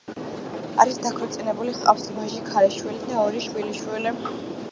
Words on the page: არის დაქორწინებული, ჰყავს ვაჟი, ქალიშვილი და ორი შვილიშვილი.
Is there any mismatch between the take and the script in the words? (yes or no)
no